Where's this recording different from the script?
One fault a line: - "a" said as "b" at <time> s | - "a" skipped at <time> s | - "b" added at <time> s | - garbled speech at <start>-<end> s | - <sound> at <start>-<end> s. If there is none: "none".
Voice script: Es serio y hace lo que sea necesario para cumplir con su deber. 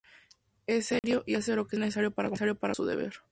- dropout at 1.0-1.0 s
- "sea" skipped at 1.8 s
- "cumplir con" skipped at 2.8 s